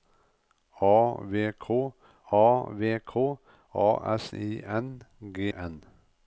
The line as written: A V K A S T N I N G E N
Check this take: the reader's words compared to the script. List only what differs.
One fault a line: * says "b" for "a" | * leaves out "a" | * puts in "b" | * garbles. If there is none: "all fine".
* says "V K A S" for "S T N"
* leaves out "E"